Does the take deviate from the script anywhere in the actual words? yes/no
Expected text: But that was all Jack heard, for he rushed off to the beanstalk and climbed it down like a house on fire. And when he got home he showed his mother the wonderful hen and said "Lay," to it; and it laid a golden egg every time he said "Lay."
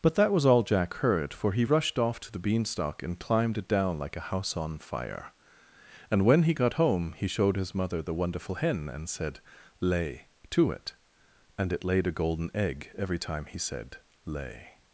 no